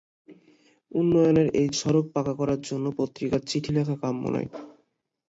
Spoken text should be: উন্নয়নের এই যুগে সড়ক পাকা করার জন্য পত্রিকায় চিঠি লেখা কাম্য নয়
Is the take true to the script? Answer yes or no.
no